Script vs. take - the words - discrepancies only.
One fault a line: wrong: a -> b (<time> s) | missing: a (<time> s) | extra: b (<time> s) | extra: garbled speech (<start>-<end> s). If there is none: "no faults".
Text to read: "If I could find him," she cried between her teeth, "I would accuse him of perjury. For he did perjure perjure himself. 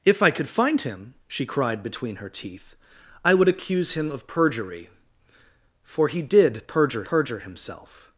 no faults